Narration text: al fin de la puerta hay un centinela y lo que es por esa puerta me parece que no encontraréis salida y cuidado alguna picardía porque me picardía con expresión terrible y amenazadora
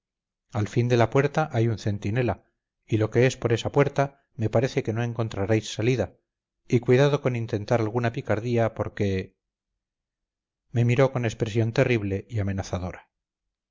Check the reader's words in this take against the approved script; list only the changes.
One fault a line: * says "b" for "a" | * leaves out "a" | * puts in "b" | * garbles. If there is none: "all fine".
* puts in "con intentar"
* says "miró" for "picardía"